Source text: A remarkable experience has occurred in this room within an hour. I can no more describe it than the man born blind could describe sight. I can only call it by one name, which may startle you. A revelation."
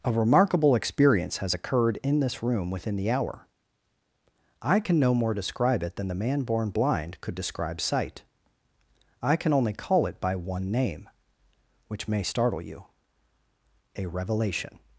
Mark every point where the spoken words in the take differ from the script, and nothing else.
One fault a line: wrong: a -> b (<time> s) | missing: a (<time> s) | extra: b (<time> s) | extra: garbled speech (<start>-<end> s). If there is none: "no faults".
wrong: an -> the (3.0 s)